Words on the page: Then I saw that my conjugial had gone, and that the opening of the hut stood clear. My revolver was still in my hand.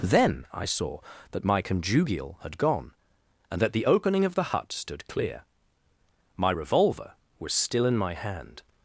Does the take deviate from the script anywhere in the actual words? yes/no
no